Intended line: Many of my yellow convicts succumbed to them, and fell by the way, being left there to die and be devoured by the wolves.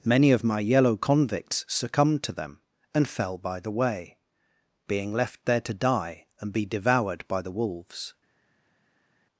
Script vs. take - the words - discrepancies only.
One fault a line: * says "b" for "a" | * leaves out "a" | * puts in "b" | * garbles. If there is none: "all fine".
all fine